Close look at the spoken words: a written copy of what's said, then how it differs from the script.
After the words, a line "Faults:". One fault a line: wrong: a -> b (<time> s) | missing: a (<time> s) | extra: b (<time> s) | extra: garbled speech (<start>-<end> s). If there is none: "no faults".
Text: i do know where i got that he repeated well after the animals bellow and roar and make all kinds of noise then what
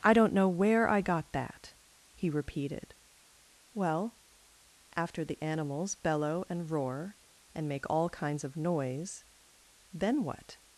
i don't know where i got that he repeated well after the animals bellow and roar and make all kinds of noise then what
Faults:
wrong: do -> don't (0.1 s)